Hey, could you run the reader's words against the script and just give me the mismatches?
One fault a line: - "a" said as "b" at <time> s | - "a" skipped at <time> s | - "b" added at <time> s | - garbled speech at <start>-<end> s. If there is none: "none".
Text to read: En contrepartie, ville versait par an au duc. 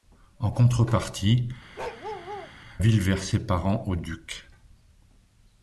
none